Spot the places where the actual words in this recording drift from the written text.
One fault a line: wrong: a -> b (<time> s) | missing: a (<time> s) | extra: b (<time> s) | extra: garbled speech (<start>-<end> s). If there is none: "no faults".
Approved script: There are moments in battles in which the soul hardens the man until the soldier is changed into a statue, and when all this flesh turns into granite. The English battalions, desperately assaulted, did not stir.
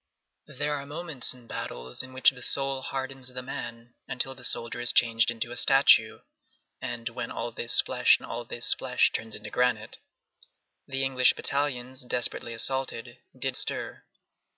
extra: all this flesh (8.2 s)
missing: not (13.5 s)